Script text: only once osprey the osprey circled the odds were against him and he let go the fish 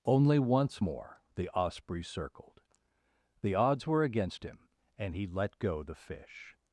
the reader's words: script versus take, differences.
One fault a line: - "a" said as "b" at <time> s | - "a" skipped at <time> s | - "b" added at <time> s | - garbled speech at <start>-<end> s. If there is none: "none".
- "osprey" said as "more" at 0.8 s